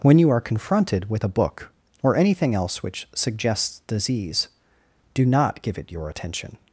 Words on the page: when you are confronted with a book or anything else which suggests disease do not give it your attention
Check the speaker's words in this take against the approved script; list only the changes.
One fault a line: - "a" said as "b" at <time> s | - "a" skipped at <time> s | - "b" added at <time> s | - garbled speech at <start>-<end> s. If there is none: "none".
none